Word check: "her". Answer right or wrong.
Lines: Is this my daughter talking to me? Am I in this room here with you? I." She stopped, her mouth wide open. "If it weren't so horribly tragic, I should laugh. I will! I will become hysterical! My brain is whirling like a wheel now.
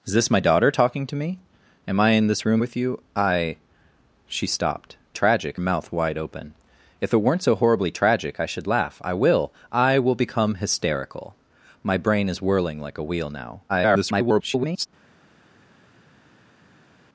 wrong